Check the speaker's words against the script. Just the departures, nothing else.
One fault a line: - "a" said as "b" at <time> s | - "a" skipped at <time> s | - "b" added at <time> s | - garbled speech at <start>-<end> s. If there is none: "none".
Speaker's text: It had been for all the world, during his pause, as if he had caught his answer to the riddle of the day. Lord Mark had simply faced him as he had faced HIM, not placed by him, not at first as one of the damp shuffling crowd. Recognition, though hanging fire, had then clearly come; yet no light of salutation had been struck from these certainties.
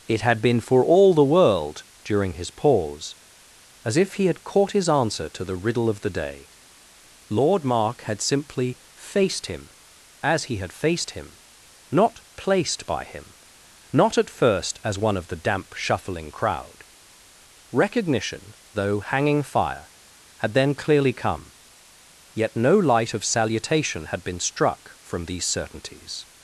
none